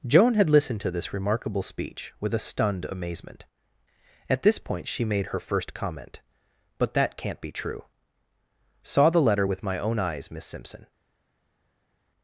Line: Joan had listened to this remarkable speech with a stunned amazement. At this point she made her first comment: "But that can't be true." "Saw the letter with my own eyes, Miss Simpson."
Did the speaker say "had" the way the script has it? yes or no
yes